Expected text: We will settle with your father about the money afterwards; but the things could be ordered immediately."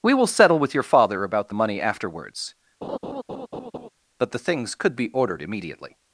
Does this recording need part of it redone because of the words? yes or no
no